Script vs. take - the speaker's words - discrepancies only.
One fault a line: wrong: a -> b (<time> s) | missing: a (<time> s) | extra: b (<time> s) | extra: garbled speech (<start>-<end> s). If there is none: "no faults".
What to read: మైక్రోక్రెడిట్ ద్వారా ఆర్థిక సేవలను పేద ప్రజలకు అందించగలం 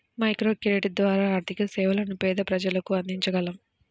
no faults